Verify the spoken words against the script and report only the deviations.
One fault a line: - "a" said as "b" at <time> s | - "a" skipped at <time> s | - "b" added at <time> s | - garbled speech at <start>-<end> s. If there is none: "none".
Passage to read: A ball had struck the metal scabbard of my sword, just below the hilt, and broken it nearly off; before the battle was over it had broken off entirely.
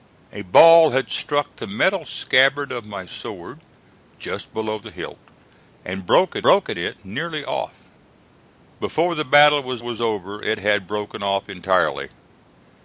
- "broken" added at 6.4 s
- "was" added at 9.8 s